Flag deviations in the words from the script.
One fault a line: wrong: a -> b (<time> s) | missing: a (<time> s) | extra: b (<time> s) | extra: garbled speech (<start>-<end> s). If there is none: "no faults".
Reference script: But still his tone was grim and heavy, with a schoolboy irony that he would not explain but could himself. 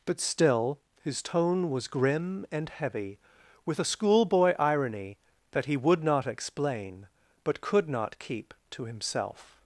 extra: not keep to (7.9 s)